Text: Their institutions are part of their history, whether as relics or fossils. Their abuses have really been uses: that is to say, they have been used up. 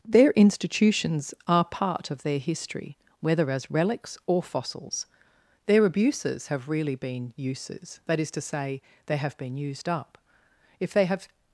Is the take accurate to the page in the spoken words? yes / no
no